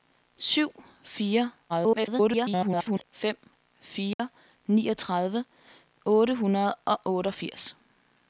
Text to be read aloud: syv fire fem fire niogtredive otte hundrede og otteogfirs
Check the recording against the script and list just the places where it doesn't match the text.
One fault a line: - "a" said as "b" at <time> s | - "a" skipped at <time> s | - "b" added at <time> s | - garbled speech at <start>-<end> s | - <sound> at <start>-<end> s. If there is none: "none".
- garbled speech at 1.7-3.0 s
- dropout at 4.1-4.2 s